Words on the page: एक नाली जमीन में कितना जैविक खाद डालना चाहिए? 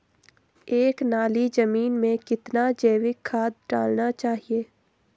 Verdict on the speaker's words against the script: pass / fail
pass